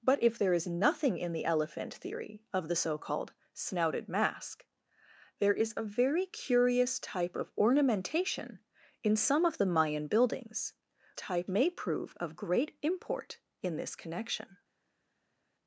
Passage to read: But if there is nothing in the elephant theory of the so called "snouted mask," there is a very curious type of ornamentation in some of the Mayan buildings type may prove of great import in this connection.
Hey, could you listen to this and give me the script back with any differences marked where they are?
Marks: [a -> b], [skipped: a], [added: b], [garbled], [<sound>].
But if there is nothing in the elephant theory of the so called "snouted mask," there is a very curious type of ornamentation in some of the Mayan buildings type may prove of great import in this connection.